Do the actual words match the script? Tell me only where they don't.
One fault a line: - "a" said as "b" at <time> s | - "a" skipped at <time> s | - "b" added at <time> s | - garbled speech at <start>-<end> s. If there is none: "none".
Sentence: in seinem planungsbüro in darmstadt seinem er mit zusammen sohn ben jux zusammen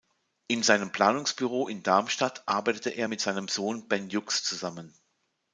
- "seinem" said as "arbeitete" at 2.5 s
- "zusammen" said as "seinem" at 3.2 s